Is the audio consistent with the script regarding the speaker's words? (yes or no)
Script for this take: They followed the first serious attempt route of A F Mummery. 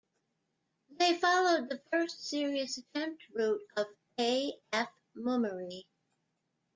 yes